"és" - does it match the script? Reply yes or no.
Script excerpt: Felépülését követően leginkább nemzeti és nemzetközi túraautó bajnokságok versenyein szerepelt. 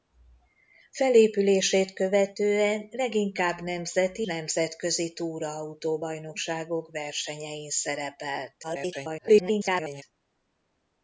no